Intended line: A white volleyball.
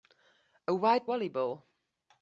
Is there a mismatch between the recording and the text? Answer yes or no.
no